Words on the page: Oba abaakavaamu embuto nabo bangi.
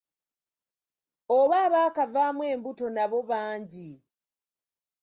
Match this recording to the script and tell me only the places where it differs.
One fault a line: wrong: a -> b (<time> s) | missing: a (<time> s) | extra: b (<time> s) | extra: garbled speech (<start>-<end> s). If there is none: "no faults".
no faults